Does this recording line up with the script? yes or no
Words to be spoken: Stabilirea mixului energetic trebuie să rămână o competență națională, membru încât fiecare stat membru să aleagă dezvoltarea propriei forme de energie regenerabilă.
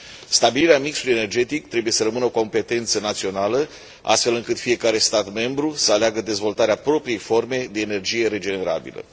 no